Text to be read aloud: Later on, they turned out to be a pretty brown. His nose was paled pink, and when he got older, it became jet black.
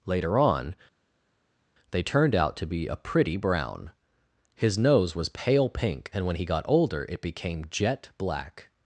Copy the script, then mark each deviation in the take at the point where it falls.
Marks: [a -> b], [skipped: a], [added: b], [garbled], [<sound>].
Later on, they turned out to be a pretty brown. His nose was [paled -> pale] pink, and when he got older, it became jet black.